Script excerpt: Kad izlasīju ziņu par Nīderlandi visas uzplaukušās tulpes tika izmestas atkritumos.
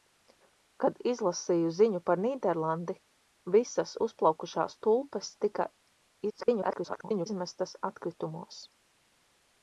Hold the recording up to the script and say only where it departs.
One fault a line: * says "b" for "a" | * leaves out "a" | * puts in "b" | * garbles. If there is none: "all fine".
* garbles